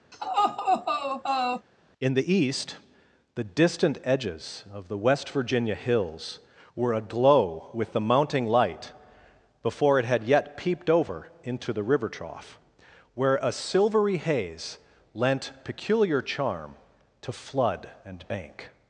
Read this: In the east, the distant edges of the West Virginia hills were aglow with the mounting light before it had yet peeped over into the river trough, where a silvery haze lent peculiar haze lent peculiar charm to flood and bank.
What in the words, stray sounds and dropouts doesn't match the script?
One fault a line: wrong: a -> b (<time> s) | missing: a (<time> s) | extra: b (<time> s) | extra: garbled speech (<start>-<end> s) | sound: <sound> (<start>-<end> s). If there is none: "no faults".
sound: laugh (0.1-1.7 s)
missing: haze lent peculiar (16.2 s)